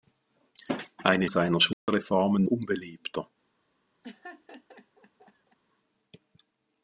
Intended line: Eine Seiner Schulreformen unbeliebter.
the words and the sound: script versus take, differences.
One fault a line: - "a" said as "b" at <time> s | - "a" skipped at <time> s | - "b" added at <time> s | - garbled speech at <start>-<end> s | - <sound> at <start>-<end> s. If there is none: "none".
- dropout at 1.7-1.9 s
- laugh at 4.0-5.6 s